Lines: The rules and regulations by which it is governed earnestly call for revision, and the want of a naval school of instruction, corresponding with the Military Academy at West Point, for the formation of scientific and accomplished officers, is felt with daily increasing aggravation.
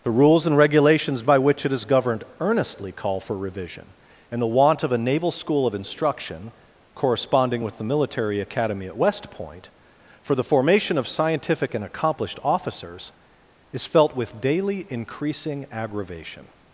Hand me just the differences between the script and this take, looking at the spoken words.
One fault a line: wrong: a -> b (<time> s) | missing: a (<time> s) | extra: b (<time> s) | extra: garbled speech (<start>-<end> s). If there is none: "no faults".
no faults